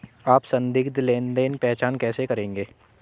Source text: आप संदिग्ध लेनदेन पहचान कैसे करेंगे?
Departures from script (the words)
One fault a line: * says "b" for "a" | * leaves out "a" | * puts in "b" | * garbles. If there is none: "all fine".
all fine